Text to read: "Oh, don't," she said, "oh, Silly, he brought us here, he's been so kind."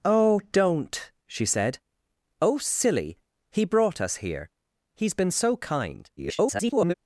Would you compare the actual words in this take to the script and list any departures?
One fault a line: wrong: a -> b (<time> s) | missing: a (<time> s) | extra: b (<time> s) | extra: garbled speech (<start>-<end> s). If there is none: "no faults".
extra: garbled speech (6.2-6.9 s)